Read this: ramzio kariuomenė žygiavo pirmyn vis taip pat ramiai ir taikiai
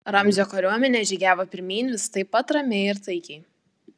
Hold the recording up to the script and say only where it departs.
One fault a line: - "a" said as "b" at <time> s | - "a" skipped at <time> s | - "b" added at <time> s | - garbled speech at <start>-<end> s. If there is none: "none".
none